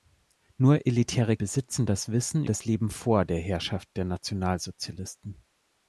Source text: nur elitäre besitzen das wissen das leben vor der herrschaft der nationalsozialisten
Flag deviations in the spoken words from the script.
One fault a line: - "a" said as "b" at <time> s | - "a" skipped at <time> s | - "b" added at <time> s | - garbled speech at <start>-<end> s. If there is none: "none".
none